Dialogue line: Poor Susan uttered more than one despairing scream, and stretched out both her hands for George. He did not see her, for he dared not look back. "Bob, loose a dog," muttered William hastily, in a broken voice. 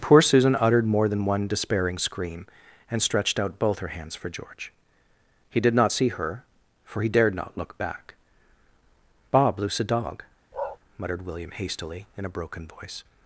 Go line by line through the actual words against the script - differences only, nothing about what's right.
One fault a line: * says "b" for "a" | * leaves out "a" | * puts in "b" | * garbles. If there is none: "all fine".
all fine